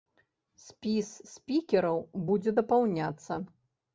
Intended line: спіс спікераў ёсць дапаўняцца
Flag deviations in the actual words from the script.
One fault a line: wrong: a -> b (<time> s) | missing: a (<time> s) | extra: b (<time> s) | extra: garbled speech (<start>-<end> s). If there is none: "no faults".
wrong: ёсць -> будзе (2.3 s)